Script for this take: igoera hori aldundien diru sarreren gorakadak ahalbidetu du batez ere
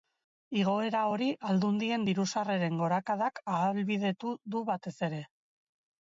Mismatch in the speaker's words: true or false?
false